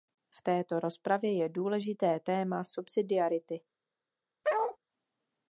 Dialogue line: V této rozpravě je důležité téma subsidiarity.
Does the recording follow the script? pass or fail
pass